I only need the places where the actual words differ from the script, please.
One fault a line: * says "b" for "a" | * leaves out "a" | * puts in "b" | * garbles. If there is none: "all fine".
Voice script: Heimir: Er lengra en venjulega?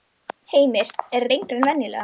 all fine